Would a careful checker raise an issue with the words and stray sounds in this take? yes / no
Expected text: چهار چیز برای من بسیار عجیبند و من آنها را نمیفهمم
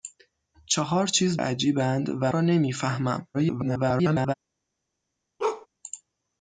yes